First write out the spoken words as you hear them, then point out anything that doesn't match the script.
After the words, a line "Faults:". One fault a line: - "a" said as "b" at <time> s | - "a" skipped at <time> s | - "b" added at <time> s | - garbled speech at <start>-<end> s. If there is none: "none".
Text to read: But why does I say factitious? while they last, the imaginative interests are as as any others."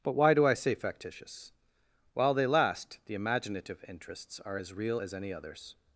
But why do I say factitious? while they last, the imaginative interests are as real as any others."
Faults:
- "does" said as "do" at 0.3 s
- "real" added at 4.7 s